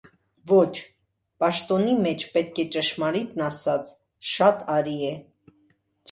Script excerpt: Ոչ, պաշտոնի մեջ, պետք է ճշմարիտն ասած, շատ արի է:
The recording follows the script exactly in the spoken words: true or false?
true